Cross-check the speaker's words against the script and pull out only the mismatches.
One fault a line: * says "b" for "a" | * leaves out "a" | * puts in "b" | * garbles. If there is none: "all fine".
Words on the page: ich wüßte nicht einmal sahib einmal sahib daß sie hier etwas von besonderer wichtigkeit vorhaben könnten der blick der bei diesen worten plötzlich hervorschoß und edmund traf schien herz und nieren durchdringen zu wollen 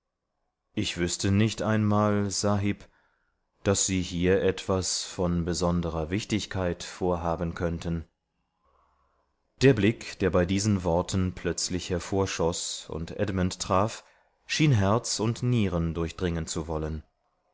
* leaves out "einmal sahib"